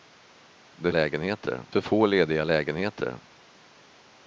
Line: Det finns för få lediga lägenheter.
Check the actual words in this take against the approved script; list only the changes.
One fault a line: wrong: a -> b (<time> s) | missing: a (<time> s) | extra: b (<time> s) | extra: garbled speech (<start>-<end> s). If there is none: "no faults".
wrong: finns -> lägenheter (0.9 s)